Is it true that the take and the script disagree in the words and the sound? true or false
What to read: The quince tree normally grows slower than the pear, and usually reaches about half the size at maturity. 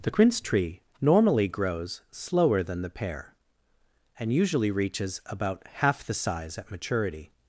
false